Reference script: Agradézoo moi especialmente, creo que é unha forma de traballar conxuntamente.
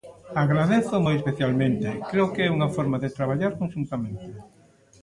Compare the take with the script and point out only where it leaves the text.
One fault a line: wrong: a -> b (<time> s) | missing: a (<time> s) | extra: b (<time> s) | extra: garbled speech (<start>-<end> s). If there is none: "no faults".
no faults